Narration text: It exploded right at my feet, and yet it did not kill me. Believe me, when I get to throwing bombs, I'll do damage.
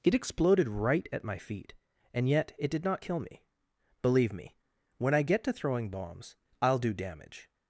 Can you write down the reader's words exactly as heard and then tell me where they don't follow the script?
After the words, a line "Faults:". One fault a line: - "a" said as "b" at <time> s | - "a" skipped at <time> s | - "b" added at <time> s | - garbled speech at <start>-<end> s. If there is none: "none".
It exploded right at my feet, and yet it did not kill me. Believe me, when I get to throwing bombs, I'll do damage.
Faults:
none